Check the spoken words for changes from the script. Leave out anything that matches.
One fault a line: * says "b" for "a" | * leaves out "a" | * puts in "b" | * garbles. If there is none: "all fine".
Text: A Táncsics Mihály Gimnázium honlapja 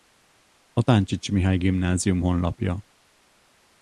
all fine